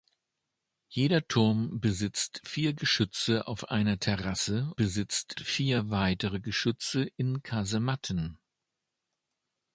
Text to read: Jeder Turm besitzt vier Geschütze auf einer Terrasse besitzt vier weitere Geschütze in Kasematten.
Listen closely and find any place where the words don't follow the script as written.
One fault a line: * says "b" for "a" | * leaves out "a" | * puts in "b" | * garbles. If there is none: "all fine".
all fine